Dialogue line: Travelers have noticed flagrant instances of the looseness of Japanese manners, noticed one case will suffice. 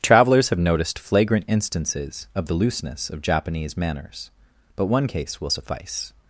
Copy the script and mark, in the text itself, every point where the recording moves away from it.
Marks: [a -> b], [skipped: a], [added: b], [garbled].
Travelers have noticed flagrant instances of the looseness of Japanese manners, [noticed -> but] one case will suffice.